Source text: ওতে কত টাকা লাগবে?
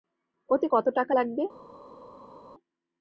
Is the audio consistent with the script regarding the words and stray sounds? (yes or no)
yes